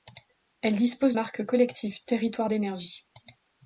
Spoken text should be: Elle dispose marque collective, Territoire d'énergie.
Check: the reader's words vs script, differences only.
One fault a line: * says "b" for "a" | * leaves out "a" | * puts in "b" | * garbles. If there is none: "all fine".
all fine